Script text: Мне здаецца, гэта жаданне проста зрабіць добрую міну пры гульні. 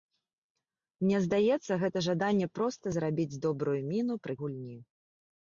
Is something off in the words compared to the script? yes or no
no